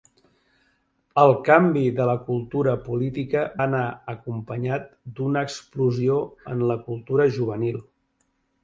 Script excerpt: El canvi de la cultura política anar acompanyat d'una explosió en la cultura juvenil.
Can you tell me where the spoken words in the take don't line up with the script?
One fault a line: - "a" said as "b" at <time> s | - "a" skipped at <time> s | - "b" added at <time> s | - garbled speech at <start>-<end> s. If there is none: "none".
none